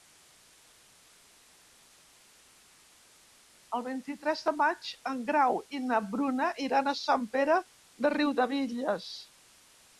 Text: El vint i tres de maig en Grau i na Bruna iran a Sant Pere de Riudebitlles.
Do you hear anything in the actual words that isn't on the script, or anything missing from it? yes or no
no